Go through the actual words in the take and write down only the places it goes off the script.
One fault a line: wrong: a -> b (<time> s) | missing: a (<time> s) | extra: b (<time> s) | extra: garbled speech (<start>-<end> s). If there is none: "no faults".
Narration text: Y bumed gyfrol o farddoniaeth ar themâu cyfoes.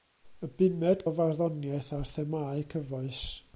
missing: gyfrol (1.0 s)